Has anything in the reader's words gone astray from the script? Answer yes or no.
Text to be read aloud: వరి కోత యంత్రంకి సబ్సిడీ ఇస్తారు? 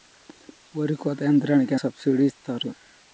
no